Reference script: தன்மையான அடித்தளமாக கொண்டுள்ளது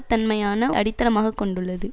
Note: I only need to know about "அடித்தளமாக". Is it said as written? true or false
true